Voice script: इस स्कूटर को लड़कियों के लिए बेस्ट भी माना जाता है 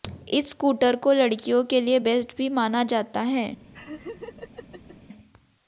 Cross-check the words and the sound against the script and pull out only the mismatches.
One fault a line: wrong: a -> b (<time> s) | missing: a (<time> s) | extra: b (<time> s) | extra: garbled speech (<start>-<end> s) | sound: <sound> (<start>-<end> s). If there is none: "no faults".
sound: laugh (3.7-5.0 s)